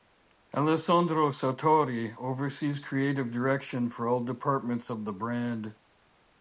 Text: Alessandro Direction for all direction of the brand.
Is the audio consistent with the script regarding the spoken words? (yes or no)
no